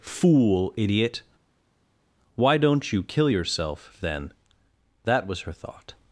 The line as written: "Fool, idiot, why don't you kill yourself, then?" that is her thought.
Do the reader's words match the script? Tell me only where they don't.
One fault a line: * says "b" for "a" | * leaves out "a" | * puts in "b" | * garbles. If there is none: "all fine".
* says "was" for "is"